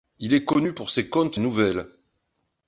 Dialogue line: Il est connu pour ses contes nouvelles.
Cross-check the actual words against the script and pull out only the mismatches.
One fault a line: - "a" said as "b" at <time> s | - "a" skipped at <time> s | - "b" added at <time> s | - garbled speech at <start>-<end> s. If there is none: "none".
none